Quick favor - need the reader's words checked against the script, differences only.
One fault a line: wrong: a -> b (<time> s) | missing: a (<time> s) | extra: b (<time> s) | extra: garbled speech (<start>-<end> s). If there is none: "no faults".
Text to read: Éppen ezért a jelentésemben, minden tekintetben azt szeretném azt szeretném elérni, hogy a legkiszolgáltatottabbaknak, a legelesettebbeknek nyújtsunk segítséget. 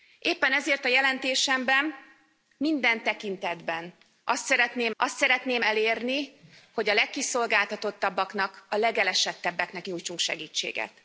no faults